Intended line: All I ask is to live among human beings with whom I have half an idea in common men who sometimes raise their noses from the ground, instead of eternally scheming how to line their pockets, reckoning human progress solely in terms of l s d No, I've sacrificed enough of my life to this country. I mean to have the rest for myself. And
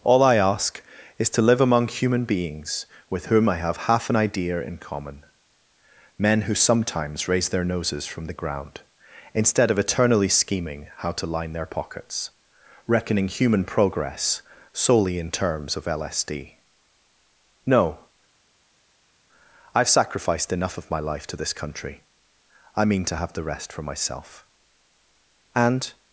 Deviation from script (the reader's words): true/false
false